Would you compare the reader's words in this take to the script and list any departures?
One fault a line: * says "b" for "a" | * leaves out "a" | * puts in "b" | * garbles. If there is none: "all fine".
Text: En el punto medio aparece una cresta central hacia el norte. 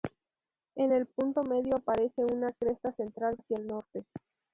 all fine